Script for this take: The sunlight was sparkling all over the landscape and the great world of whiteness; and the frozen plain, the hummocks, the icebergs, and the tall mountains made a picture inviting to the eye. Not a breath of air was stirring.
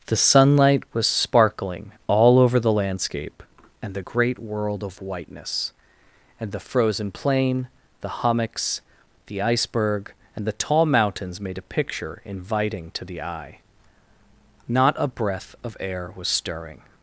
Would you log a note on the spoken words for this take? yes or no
yes